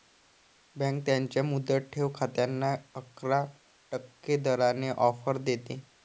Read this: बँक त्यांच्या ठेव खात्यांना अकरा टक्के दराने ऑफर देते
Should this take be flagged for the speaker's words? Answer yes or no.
yes